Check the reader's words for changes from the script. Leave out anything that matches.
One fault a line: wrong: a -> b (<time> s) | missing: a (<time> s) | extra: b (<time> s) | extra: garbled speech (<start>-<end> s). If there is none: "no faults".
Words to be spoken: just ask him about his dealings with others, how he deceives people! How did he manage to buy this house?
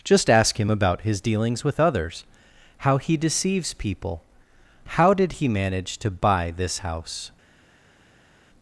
no faults